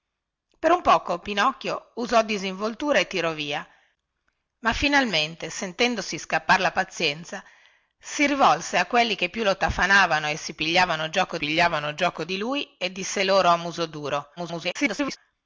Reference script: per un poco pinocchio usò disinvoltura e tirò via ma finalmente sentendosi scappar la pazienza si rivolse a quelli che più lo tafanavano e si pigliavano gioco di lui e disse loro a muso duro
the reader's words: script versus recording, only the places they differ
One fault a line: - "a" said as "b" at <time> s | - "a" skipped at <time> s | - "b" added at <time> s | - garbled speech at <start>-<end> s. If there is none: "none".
- "pigliavano gioco" added at 11.4 s
- garbled speech at 14.4-15.2 s